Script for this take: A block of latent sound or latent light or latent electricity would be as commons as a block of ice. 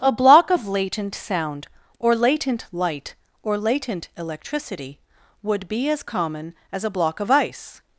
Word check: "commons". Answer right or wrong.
wrong